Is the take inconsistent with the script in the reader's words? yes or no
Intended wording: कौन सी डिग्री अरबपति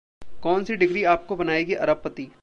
yes